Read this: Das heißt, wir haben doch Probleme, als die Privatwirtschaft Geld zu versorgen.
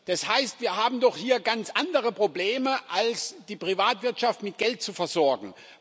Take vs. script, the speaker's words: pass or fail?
fail